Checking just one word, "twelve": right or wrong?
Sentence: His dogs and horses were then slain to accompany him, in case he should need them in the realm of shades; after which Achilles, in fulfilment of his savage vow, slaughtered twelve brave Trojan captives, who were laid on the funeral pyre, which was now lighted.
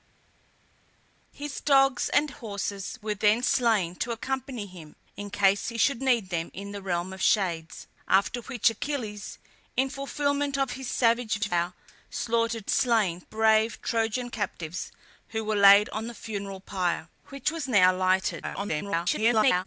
wrong